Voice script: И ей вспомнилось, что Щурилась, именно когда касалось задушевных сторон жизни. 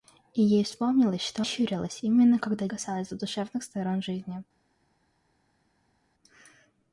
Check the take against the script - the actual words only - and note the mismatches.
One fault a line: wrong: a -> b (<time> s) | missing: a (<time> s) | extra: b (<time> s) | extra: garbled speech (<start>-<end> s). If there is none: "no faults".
no faults